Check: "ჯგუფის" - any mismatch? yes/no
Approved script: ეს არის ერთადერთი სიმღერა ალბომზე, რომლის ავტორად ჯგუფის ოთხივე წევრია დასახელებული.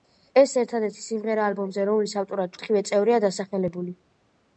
yes